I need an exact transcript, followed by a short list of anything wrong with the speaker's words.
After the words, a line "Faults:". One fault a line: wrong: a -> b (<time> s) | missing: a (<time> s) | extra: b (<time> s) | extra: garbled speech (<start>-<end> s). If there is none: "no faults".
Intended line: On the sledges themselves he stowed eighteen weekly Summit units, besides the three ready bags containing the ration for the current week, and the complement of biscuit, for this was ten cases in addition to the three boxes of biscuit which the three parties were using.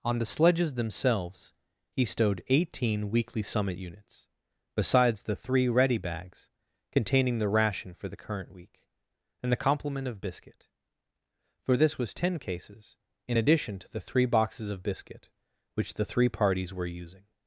On the sledges themselves he stowed eighteen weekly Summit units, besides the three ready bags containing the ration for the current week, and the complement of biscuit, for this was ten cases in addition to the three boxes of biscuit which the three parties were using.
Faults:
no faults